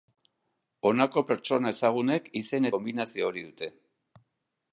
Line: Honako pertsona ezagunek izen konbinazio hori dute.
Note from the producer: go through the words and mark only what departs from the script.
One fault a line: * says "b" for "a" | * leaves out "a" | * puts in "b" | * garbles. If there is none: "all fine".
all fine